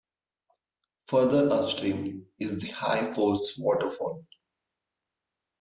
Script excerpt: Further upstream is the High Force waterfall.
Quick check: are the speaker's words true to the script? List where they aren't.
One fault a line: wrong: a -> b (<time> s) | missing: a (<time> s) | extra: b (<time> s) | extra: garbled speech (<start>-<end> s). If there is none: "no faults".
no faults